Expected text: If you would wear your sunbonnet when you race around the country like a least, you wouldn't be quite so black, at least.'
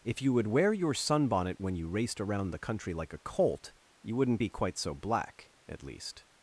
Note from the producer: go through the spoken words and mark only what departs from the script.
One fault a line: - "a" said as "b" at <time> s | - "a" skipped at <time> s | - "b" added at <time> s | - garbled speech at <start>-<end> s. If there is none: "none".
- "race" said as "raced" at 1.9 s
- "least" said as "colt" at 3.2 s